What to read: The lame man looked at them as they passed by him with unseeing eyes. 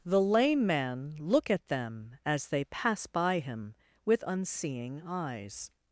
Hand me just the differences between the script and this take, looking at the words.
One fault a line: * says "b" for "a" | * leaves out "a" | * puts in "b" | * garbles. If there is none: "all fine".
* says "look" for "looked"
* says "pass" for "passed"